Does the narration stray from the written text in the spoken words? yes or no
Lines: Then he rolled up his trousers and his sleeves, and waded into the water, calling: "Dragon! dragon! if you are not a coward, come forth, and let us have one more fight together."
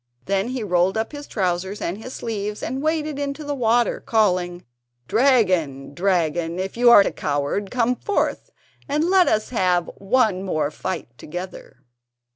yes